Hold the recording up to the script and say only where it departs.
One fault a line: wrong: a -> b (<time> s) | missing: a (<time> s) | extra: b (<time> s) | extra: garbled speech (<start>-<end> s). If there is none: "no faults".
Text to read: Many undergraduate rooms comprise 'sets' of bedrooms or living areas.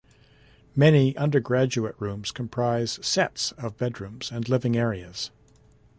wrong: or -> and (4.3 s)